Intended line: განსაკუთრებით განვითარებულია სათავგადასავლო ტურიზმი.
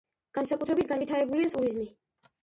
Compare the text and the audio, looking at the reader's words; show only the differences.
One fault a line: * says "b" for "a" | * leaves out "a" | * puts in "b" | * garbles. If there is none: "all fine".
* leaves out "სათავგადასავლო"